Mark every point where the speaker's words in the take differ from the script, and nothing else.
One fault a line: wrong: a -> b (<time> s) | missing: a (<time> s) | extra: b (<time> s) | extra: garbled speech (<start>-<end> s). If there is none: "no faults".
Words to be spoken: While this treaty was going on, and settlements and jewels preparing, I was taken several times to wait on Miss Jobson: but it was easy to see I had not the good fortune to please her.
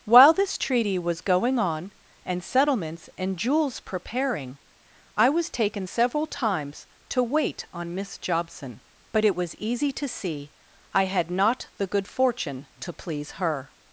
no faults